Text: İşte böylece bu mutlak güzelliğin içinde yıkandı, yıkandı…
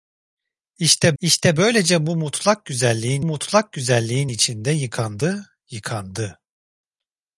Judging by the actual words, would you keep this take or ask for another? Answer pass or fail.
fail